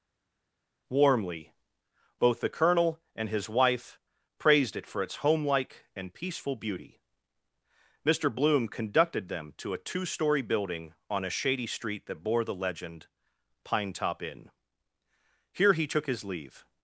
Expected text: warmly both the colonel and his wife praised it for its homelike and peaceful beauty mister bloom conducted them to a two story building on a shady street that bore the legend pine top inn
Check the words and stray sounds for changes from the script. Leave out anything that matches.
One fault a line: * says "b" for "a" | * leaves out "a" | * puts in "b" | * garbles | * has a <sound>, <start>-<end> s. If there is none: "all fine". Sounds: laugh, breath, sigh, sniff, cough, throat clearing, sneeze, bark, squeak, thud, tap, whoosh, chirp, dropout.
* puts in "here he took his leave"